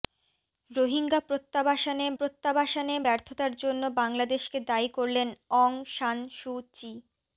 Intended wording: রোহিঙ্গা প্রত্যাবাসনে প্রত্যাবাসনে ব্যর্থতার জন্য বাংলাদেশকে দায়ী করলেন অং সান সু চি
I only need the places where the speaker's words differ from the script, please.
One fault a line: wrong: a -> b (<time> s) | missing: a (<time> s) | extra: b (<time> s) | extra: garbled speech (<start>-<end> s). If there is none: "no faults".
no faults